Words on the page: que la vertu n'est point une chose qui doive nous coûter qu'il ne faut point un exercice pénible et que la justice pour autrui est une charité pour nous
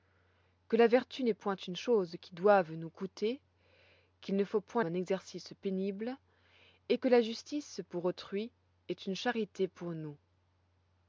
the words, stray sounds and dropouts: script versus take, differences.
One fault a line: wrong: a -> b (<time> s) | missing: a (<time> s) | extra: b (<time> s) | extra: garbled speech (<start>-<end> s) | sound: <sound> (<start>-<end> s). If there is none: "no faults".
no faults